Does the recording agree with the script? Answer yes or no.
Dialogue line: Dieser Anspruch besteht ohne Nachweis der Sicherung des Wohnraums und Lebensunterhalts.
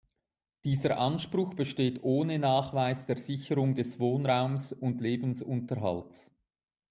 yes